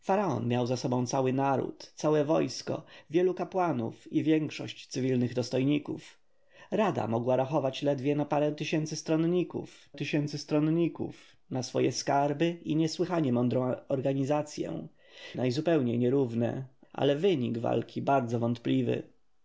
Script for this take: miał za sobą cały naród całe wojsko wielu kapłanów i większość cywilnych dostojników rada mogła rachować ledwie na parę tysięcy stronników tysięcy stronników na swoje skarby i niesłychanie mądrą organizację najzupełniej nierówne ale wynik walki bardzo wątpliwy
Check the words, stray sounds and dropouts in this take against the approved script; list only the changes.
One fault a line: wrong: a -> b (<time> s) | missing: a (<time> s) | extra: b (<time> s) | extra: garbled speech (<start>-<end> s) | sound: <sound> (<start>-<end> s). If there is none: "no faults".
no faults